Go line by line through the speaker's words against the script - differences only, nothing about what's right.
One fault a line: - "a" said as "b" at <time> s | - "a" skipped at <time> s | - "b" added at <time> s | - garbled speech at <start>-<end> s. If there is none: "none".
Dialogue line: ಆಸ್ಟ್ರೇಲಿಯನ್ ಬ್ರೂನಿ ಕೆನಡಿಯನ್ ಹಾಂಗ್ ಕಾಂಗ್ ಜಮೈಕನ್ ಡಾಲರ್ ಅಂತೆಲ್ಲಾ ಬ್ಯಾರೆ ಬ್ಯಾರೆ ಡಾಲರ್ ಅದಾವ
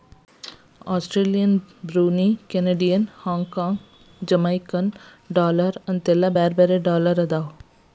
none